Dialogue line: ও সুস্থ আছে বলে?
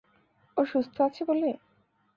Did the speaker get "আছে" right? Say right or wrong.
right